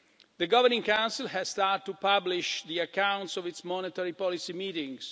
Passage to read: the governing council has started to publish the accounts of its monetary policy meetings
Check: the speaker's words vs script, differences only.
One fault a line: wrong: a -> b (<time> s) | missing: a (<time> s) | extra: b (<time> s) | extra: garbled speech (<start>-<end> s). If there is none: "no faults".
no faults